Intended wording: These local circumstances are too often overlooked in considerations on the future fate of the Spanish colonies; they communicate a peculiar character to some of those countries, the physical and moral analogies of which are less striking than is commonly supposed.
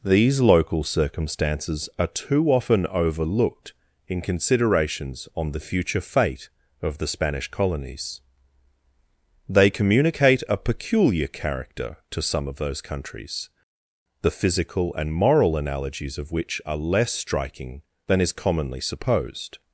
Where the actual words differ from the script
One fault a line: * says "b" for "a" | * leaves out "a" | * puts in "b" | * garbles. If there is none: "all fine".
all fine